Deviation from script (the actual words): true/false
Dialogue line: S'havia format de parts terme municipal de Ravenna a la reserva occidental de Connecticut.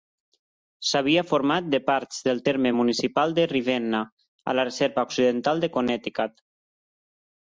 true